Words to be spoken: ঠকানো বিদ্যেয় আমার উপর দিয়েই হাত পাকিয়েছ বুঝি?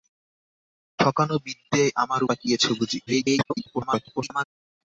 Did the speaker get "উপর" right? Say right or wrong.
wrong